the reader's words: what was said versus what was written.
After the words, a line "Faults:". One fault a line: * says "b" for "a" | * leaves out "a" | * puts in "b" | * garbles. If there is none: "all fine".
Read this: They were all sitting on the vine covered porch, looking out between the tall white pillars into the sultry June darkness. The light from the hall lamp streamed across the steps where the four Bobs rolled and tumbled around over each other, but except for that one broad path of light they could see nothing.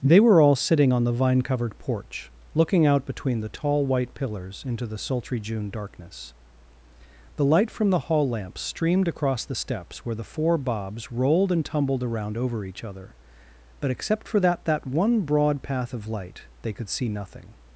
They were all sitting on the vine covered porch, looking out between the tall white pillars into the sultry June darkness. The light from the hall lamp streamed across the steps where the four Bobs rolled and tumbled around over each other, but except for that that one broad path of light they could see nothing.
Faults:
* puts in "that"